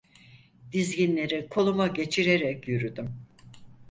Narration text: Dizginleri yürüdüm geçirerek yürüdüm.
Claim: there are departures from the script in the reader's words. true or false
true